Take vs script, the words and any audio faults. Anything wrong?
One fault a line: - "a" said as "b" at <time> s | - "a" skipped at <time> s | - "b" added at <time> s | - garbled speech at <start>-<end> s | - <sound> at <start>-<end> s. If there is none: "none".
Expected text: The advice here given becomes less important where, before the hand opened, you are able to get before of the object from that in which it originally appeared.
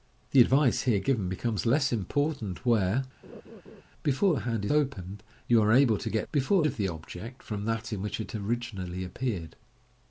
- laugh at 3.2-3.8 s